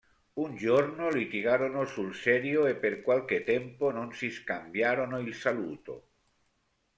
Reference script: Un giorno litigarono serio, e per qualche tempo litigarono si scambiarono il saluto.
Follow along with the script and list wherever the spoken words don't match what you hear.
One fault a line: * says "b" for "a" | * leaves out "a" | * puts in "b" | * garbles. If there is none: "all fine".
* puts in "sul"
* says "non" for "litigarono"